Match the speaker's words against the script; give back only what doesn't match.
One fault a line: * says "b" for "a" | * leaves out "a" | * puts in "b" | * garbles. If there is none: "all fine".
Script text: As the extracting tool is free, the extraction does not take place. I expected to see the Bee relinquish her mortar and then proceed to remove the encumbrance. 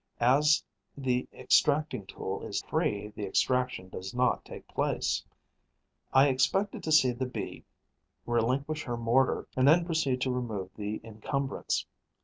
all fine